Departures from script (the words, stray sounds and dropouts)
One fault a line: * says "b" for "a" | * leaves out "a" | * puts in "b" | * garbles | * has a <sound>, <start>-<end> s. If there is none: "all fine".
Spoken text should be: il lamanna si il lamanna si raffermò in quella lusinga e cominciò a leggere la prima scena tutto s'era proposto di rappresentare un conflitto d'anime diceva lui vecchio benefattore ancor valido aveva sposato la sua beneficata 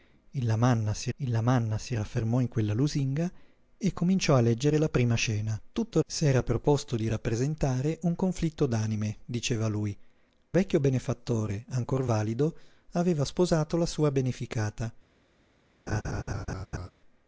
* has a laugh, 15.9-16.9 s